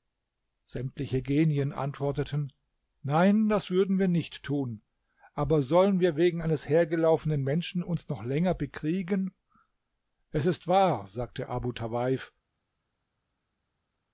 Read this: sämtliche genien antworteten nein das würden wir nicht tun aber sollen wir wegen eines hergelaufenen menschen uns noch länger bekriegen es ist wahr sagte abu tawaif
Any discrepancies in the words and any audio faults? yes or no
no